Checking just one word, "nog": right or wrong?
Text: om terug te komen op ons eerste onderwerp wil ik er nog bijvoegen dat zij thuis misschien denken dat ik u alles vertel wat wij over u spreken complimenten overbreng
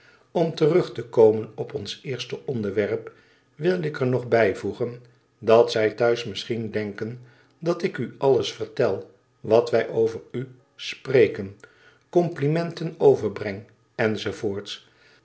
right